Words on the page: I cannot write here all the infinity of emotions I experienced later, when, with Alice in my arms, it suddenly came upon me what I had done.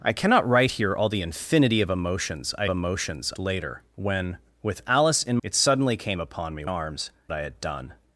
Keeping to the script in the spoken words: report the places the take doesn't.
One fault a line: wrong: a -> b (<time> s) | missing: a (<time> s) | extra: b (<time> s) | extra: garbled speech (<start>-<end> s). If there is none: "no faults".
wrong: experienced -> emotions (2.7 s)
missing: my arms (5.4 s)
wrong: what -> arms (6.6 s)